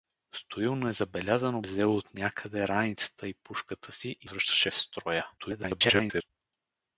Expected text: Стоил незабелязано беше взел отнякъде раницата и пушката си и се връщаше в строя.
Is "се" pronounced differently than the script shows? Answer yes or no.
yes